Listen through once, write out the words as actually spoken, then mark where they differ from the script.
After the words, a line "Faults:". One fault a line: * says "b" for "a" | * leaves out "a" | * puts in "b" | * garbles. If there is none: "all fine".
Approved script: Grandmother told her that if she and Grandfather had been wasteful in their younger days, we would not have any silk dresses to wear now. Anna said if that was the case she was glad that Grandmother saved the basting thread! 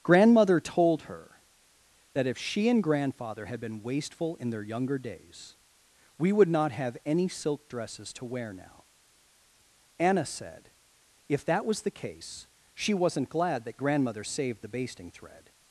Grandmother told her that if she and Grandfather had been wasteful in their younger days, we would not have any silk dresses to wear now. Anna said if that was the case she wasn't glad that Grandmother saved the basting thread!
Faults:
* says "wasn't" for "was"